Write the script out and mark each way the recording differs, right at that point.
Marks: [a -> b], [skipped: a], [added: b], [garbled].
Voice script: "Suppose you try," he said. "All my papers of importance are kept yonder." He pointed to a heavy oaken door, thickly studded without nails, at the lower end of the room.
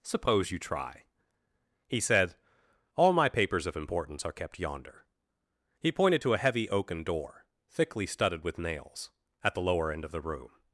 "Suppose you try," he said. "All my papers of importance are kept yonder." He pointed to a heavy oaken door, thickly studded [without -> with] nails, at the lower end of the room.